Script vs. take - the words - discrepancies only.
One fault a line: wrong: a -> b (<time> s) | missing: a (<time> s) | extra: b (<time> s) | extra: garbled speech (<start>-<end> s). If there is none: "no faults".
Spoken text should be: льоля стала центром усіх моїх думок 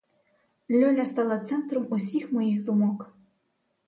no faults